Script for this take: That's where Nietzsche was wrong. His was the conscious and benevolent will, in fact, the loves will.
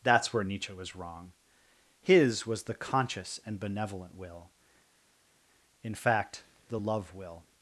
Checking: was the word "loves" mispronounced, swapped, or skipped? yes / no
yes